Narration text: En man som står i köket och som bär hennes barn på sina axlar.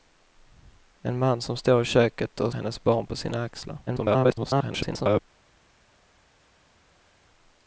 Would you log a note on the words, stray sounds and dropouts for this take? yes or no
yes